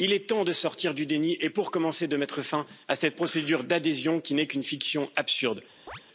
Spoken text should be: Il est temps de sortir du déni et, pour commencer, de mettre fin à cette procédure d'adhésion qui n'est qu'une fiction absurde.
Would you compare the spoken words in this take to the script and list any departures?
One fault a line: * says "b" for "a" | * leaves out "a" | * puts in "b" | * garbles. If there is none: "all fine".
all fine